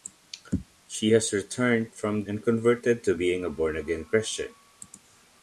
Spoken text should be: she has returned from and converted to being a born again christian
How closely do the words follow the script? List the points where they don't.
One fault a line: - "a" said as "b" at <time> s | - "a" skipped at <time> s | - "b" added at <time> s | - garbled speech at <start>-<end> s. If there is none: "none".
none